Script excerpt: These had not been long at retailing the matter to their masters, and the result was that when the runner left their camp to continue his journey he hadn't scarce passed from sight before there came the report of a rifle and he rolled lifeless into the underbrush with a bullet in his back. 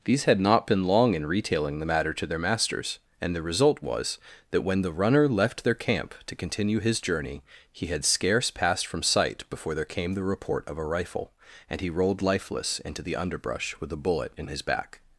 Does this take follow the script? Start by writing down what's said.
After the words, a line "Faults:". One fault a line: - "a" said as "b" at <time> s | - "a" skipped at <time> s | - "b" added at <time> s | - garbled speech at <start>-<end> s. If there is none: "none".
These had not been long in retailing the matter to their masters, and the result was that when the runner left their camp to continue his journey he had scarce passed from sight before there came the report of a rifle and he rolled lifeless into the underbrush with a bullet in his back.
Faults:
- "at" said as "in" at 1.1 s
- "hadn't" said as "had" at 7.9 s